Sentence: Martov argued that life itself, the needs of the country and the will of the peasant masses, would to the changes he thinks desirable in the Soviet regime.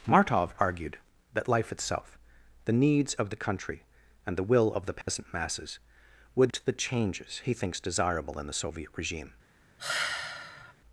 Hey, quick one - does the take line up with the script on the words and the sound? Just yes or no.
no